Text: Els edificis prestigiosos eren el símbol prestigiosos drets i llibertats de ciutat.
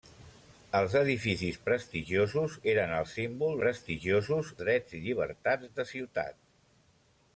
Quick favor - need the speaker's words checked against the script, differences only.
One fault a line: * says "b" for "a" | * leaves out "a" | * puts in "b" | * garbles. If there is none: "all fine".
all fine